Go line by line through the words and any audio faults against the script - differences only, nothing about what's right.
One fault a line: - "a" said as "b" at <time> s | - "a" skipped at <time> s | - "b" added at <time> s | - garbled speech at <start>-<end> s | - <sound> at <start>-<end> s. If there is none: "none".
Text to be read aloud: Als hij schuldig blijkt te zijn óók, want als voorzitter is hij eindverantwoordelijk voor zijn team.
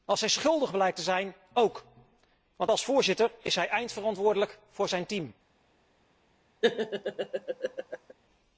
- laugh at 6.6-8.1 s